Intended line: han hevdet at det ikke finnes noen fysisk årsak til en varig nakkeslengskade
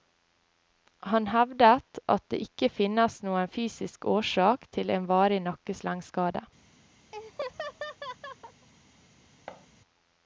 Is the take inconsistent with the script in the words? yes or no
no